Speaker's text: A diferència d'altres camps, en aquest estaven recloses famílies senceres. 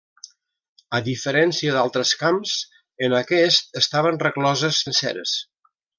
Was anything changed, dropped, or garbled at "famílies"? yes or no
yes